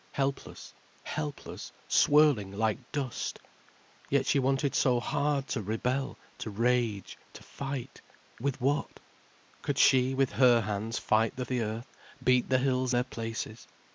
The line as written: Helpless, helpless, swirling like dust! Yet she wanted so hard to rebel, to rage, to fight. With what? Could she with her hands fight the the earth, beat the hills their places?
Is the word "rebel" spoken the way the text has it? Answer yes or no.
yes